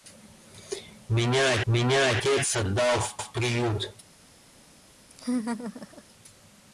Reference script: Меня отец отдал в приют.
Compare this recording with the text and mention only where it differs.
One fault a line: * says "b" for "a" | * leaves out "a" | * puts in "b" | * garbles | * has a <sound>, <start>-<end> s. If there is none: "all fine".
* puts in "меня"
* puts in "в"
* has a laugh, 5.1-6.0 s